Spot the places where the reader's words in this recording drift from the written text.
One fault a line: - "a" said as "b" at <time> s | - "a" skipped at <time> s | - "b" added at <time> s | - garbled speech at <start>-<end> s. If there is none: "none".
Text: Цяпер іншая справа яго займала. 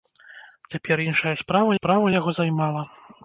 - "справа" added at 1.8 s